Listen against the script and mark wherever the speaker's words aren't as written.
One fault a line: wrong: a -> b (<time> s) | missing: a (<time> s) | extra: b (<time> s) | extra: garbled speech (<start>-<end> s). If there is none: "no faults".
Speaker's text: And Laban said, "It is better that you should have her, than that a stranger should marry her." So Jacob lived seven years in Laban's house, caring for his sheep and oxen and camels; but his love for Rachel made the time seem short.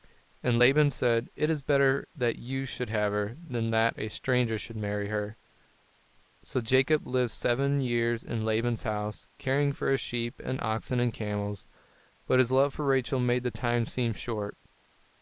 no faults